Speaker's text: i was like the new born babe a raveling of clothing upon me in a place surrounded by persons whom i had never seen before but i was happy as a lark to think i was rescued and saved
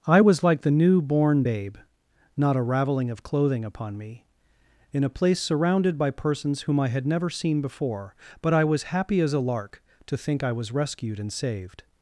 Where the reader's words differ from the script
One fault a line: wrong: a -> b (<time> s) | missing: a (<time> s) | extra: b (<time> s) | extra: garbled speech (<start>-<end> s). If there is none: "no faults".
extra: not (2.4 s)